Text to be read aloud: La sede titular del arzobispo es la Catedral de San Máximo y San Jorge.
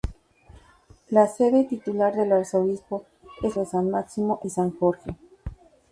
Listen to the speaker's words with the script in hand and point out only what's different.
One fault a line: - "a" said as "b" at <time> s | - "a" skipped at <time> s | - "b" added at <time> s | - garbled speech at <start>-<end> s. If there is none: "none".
- "la Catedral" skipped at 3.6 s